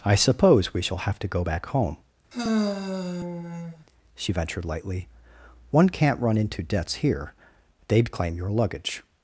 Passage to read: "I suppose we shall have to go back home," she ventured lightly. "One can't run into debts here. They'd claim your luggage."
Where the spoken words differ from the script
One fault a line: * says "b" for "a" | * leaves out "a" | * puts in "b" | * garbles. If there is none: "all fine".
all fine